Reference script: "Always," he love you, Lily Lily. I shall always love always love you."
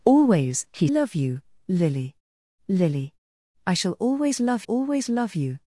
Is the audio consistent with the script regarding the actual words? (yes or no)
yes